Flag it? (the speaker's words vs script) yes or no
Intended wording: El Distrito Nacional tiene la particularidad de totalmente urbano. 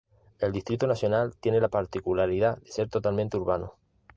yes